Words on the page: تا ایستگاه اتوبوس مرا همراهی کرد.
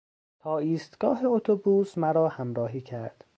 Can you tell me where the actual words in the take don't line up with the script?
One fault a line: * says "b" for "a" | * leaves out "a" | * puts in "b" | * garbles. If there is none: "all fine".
all fine